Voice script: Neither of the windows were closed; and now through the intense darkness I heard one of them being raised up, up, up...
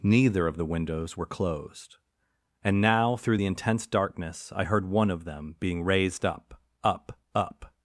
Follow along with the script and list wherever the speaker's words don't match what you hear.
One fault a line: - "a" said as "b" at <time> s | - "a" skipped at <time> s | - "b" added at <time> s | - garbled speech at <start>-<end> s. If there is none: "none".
none